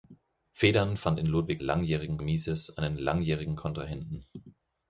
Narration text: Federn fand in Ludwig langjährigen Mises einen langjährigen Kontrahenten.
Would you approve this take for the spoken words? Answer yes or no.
yes